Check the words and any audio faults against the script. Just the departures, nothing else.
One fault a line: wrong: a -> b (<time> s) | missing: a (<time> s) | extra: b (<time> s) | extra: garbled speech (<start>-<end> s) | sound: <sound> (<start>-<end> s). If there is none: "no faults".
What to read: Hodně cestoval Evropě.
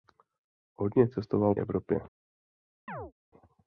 sound: chirp (2.9-3.1 s)